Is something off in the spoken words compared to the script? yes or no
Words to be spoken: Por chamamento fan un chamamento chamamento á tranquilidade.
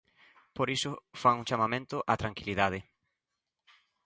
yes